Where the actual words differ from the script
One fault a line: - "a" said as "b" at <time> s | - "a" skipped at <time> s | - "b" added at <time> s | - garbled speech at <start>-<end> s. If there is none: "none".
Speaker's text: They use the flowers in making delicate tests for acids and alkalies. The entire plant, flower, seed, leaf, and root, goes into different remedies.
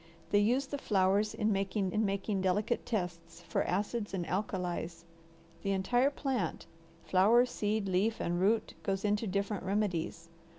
- "in making" added at 1.9 s